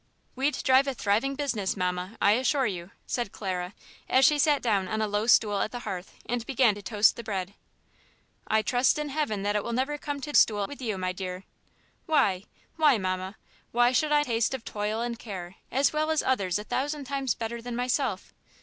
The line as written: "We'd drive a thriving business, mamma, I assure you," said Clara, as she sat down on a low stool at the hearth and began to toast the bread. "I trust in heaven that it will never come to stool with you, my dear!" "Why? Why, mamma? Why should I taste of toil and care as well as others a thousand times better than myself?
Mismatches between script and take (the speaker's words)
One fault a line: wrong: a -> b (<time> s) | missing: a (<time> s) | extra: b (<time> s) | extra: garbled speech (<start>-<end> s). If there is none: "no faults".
no faults